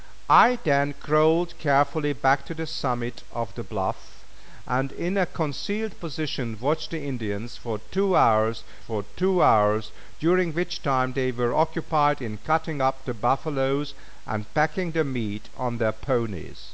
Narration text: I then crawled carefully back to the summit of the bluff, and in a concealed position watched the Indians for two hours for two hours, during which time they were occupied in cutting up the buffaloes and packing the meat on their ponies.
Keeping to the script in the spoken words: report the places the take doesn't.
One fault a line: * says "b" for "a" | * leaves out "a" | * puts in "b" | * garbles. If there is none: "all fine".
all fine